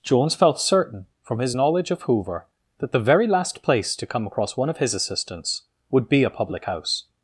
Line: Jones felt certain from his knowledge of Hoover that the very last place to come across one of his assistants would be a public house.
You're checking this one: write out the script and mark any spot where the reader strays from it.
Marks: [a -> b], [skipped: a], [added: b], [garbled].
Jones felt certain from his knowledge of Hoover that the very last place to come across one of his assistants would be a public house.